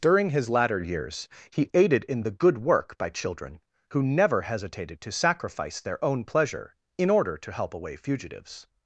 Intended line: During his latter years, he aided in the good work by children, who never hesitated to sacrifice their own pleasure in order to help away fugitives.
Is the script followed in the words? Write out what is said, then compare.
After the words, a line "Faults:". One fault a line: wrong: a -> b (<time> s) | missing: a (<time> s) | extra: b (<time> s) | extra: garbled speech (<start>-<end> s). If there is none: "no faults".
During his latter years, he aided in the good work by children, who never hesitated to sacrifice their own pleasure in order to help away fugitives.
Faults:
no faults